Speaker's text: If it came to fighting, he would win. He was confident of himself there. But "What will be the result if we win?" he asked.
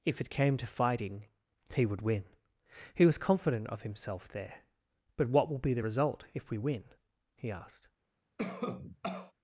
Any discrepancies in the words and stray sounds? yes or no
yes